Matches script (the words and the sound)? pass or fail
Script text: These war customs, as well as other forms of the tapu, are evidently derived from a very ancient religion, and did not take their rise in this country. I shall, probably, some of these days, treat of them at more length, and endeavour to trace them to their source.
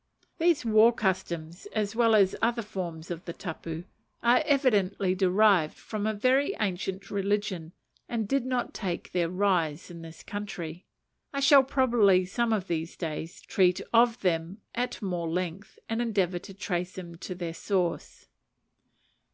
pass